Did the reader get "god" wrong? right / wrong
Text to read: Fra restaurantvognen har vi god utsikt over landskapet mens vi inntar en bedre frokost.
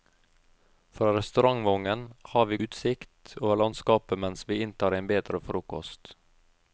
wrong